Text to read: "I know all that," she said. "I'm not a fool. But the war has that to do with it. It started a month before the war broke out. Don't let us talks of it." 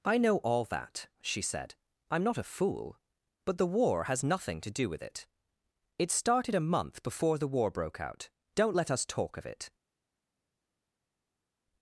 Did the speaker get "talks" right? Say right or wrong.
wrong